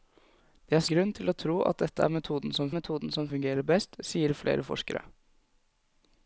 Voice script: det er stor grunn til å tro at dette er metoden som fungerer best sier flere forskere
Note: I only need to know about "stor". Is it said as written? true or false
false